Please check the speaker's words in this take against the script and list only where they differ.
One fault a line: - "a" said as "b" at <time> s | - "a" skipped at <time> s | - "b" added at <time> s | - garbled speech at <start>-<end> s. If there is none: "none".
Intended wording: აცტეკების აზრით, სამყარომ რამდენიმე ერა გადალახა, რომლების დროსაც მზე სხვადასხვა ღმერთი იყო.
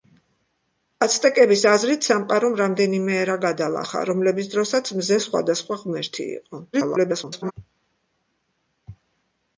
- garbled speech at 6.7-7.5 s